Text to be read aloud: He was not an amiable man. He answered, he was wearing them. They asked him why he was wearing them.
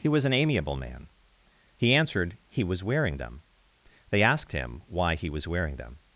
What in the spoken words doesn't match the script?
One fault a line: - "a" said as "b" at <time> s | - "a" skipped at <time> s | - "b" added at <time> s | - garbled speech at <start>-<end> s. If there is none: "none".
- "not" skipped at 0.2 s